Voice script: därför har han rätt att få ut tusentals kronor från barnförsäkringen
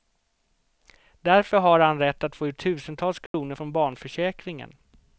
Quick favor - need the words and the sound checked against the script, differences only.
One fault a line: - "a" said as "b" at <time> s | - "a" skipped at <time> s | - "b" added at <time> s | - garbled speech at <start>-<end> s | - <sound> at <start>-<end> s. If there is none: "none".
- dropout at 3.3-3.3 s